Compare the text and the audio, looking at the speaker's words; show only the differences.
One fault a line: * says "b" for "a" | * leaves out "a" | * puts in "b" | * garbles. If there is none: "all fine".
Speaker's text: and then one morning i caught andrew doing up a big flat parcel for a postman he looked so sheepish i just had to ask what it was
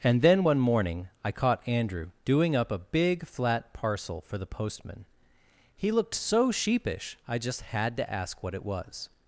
* says "the" for "a"